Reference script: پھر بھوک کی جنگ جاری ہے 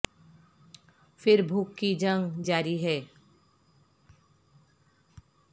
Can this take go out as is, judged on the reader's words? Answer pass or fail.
pass